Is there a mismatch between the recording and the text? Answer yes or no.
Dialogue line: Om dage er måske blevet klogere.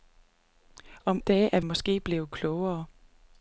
no